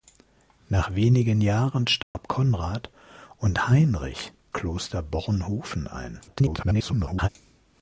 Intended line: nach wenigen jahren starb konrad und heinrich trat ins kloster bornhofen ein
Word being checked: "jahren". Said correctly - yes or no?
yes